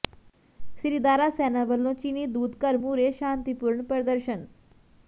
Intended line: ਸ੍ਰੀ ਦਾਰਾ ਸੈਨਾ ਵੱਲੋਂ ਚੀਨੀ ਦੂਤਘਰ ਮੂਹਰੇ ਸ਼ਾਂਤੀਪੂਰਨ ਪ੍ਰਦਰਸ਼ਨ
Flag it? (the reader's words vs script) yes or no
no